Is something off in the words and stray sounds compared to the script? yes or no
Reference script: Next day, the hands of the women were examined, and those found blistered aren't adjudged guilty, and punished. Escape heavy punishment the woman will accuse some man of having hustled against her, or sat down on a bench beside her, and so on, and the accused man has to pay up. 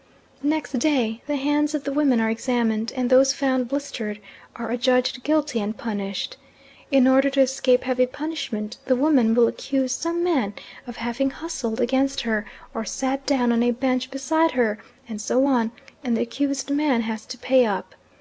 yes